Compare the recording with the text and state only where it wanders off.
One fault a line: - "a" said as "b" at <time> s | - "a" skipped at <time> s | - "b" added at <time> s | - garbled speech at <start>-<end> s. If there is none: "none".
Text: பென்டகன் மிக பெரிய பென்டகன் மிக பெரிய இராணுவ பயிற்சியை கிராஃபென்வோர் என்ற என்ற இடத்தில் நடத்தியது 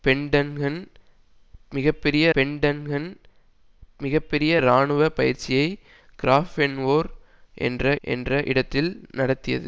none